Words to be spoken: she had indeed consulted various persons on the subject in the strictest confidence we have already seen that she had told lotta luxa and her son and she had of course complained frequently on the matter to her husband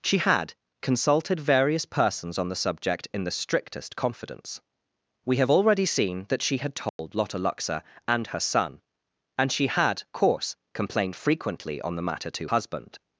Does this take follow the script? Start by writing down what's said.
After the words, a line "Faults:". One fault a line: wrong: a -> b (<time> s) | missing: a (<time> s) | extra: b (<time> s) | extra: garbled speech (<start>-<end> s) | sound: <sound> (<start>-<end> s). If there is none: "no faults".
she had consulted various persons on the subject in the strictest confidence we have already seen that she had told lotta luxa and her son and she had course complained frequently on the matter to husband
Faults:
missing: indeed (0.5 s)
sound: dropout (6.9-7.0 s)
missing: of (10.0 s)
missing: her (12.5 s)